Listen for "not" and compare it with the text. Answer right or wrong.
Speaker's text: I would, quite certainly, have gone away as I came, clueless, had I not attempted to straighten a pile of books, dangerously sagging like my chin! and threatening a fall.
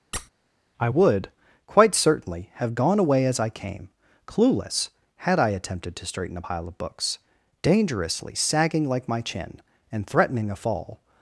wrong